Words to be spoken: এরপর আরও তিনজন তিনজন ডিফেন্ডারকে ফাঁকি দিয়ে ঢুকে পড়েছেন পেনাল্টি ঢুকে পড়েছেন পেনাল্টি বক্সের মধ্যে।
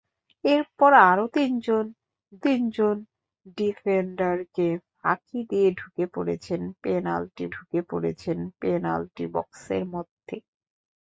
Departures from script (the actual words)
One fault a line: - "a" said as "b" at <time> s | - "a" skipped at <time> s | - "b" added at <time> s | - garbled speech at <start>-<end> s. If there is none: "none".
none